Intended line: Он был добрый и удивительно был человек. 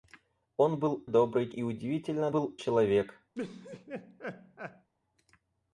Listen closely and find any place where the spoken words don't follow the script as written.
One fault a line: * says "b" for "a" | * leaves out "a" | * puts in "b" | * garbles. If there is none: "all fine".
all fine